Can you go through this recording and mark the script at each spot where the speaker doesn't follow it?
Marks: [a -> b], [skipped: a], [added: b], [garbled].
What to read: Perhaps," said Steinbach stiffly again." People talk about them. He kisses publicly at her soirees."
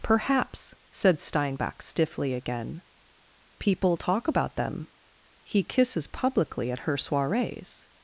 Perhaps," said Steinbach stiffly again." People talk about them. He kisses publicly at her soirees."